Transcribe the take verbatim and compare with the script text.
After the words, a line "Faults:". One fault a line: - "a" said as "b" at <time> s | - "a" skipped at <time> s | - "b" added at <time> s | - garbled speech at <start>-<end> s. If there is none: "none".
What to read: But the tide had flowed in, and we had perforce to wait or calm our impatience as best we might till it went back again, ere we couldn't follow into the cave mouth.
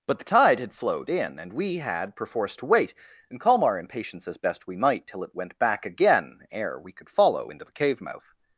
But the tide had flowed in, and we had perforce to wait and calm our impatience as best we might till it went back again, ere we could follow into the cave mouth.
Faults:
- "or" said as "and" at 3.3 s
- "couldn't" said as "could" at 6.9 s